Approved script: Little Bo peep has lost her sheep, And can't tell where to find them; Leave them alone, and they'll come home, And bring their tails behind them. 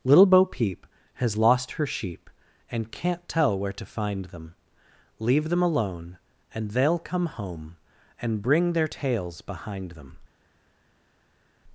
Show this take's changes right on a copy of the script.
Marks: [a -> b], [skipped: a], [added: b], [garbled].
Little Bo peep has lost her sheep, And can't tell where to find them; Leave them alone, and they'll come home, And bring their tails behind them.